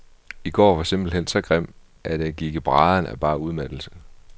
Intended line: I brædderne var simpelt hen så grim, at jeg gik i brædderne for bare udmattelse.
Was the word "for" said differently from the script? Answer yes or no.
yes